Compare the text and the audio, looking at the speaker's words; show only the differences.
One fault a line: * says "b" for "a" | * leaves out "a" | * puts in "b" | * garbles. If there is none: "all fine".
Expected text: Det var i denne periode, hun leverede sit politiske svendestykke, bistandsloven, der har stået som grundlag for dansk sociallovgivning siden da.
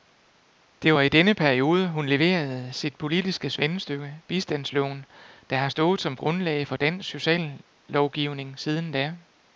all fine